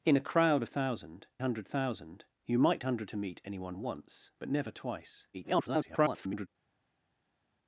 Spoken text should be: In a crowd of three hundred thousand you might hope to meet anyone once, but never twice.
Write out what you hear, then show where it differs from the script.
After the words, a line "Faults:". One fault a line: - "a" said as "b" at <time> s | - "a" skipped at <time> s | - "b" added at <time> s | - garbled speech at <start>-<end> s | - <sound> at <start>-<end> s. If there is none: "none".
In a crowd of thousand hundred thousand you might hundred to meet anyone once, but never twice. [garbled]
Faults:
- "three" said as "thousand" at 0.7 s
- "hope" said as "hundred" at 2.8 s
- garbled speech at 5.3-6.5 s